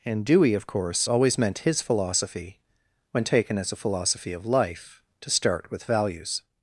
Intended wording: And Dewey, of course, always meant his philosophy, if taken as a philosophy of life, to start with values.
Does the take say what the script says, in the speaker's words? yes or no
no